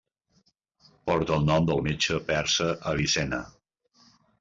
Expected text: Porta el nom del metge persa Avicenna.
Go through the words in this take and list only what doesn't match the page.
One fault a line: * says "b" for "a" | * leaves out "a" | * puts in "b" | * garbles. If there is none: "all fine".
all fine